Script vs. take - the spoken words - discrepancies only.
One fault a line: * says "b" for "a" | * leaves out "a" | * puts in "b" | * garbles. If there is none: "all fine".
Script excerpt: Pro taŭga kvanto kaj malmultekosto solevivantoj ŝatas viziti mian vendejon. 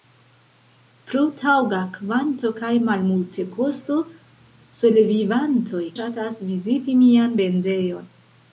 all fine